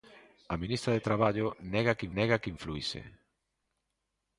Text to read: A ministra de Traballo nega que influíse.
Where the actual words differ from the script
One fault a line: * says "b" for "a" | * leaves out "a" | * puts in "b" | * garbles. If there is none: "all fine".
* puts in "nega que"